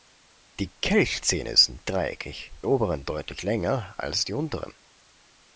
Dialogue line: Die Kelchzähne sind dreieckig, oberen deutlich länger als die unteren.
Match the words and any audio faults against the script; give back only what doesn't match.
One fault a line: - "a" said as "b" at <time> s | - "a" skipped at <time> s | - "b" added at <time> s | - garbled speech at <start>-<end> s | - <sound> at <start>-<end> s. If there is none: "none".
none